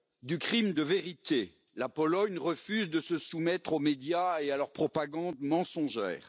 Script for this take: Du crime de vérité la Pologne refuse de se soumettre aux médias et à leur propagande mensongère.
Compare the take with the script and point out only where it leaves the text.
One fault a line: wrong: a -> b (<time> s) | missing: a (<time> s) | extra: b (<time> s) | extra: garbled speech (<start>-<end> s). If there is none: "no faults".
no faults